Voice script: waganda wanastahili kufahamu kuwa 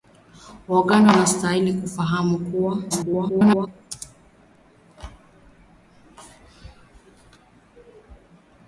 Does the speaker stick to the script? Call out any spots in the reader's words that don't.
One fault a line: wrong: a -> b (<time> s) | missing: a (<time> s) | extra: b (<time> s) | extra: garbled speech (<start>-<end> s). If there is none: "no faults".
extra: garbled speech (2.9-3.7 s)